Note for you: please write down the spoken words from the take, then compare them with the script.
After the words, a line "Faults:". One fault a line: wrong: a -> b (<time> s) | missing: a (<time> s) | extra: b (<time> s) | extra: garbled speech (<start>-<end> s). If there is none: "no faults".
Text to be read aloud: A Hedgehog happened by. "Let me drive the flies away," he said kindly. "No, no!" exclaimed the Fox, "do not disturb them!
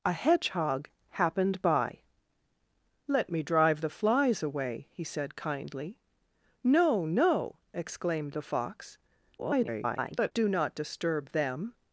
A Hedgehog happened by. "Let me drive the flies away," he said kindly. "No, no!" exclaimed the Fox, [garbled] "do not disturb them!
Faults:
extra: garbled speech (9.4-10.3 s)